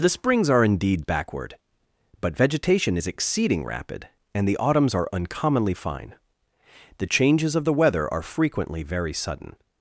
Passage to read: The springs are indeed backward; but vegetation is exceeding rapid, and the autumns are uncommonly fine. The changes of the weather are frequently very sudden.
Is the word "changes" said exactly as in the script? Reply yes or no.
yes